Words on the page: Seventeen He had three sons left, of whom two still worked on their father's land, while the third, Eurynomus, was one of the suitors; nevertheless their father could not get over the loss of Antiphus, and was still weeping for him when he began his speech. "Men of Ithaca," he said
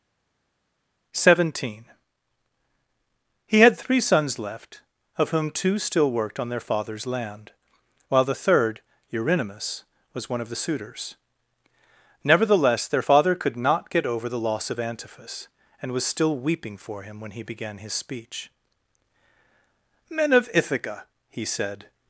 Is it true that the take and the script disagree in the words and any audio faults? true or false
false